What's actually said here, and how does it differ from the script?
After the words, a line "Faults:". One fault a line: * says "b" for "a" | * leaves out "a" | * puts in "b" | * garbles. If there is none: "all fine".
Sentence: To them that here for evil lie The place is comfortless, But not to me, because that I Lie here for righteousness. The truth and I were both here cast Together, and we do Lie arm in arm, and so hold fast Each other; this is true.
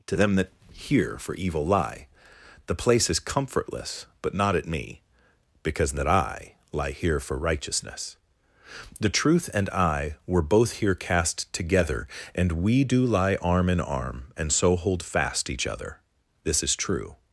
To them that here for evil lie The place is comfortless, But not at me, because that I Lie here for righteousness. The truth and I were both here cast Together, and we do Lie arm in arm, and so hold fast Each other; this is true.
Faults:
* says "at" for "to"